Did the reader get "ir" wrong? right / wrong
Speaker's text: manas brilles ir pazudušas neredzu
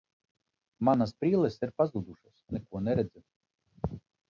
right